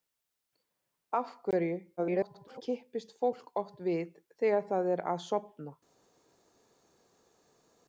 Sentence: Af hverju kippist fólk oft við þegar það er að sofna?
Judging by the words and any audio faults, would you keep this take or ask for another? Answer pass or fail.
fail